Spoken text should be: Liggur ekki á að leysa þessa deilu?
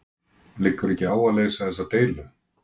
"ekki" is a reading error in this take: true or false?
false